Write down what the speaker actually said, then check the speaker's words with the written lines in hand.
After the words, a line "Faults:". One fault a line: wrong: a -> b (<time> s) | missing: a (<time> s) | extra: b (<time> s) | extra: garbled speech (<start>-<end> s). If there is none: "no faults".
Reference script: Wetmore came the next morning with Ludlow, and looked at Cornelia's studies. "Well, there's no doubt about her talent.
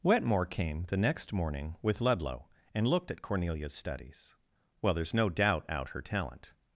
Wetmore came the next morning with Ludlow, and looked at Cornelia's studies. "Well, there's no doubt out her talent.
Faults:
wrong: about -> out (5.7 s)